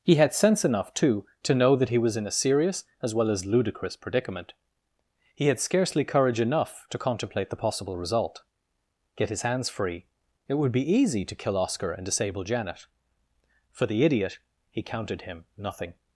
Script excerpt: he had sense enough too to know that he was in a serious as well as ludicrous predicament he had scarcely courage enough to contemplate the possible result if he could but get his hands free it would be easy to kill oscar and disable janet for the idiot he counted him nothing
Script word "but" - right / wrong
wrong